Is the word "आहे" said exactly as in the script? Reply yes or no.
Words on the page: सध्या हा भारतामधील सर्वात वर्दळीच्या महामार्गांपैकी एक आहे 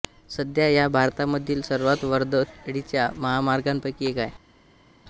yes